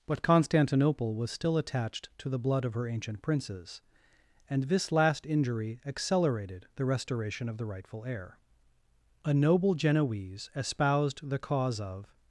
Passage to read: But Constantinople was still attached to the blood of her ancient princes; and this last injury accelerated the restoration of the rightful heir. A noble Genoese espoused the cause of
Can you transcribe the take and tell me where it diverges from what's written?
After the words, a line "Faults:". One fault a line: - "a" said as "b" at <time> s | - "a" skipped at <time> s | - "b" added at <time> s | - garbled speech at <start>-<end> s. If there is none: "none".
But Constantinople was still attached to the blood of her ancient princes; and this last injury accelerated the restoration of the rightful heir. A noble Genoese espoused the cause of
Faults:
none